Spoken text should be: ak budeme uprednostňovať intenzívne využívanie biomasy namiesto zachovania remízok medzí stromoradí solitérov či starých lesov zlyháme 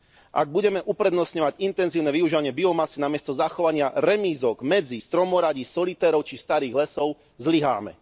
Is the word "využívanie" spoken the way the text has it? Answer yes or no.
yes